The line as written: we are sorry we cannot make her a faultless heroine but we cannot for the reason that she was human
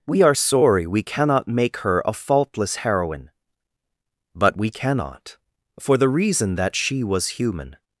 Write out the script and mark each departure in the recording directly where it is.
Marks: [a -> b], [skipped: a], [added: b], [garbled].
we are sorry we cannot make her a faultless heroine but we cannot for the reason that she was human